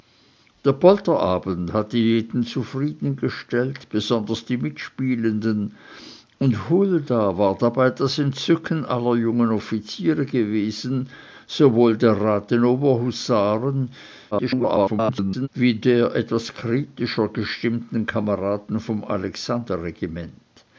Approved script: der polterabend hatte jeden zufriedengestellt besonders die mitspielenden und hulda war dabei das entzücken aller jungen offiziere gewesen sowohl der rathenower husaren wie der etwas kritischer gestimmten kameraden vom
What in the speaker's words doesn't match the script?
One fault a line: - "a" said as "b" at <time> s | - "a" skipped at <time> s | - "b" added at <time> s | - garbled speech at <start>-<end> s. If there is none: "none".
- garbled speech at 14.3-15.5 s